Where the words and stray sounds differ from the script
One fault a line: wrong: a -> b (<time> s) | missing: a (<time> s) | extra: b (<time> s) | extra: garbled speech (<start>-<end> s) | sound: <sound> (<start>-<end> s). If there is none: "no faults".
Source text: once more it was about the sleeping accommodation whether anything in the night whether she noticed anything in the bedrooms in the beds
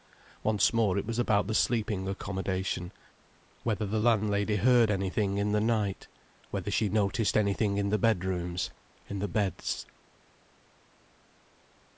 extra: the landlady heard (3.9 s)